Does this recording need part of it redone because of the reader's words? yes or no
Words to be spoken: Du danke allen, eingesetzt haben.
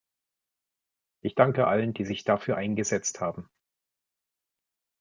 yes